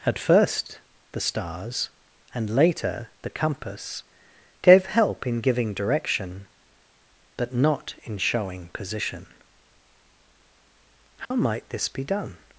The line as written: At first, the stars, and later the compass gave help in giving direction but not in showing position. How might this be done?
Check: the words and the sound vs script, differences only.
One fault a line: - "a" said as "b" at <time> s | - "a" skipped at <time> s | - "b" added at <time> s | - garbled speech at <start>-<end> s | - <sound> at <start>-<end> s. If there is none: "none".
- dropout at 11.2-11.3 s